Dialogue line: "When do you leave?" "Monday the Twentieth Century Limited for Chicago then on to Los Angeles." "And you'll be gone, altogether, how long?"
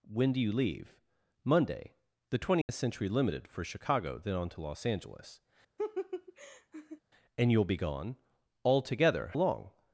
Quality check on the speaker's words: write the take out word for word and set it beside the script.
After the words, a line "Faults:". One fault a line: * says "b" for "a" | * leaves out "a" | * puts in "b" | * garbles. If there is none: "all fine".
"When do you leave?" "Monday the Twentieth Century Limited for Chicago then on to Los Angeles." "And you'll be gone, altogether, long?"
Faults:
* leaves out "how"